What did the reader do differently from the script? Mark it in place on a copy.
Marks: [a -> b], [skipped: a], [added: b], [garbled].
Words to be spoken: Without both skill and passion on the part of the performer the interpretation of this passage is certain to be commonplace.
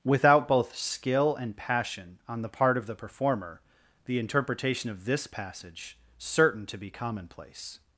Without both skill and passion on the part of the performer the interpretation of this passage [skipped: is] certain to be commonplace.